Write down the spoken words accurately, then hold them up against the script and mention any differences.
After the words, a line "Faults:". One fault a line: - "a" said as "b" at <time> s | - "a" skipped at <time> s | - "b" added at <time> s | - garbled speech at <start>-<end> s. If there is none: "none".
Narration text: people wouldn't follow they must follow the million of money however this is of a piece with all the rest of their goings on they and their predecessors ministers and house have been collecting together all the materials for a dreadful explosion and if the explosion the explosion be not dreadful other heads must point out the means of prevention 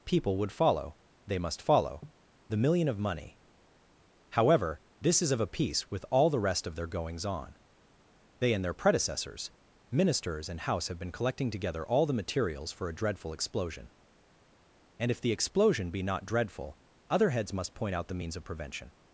people would follow they must follow the million of money however this is of a piece with all the rest of their goings on they and their predecessors ministers and house have been collecting together all the materials for a dreadful explosion and if the explosion be not dreadful other heads must point out the means of prevention
Faults:
- "wouldn't" said as "would" at 0.4 s
- "the explosion" skipped at 15.9 s